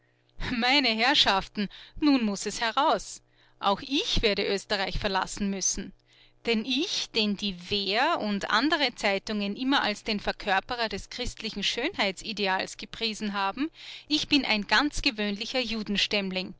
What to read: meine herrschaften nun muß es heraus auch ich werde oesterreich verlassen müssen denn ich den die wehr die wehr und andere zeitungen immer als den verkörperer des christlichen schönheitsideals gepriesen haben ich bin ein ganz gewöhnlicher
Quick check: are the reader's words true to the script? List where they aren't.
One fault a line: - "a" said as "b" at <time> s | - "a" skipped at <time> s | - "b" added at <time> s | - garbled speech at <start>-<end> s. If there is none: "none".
- "die wehr" skipped at 8.2 s